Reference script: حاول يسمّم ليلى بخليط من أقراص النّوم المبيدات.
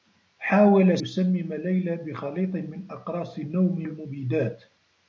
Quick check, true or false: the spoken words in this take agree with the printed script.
true